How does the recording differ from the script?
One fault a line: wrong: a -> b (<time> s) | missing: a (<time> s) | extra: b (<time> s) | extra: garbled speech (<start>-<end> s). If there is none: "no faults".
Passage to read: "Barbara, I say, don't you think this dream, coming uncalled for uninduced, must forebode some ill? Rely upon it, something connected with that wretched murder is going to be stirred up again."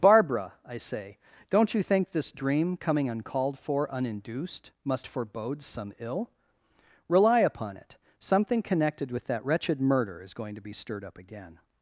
no faults